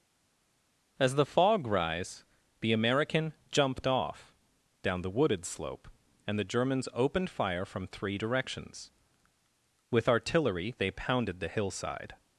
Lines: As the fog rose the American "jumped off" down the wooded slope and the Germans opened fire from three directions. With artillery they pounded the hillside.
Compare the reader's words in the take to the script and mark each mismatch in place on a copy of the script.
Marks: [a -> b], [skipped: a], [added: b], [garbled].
As the fog [rose -> rise] the American "jumped off" down the wooded slope and the Germans opened fire from three directions. With artillery they pounded the hillside.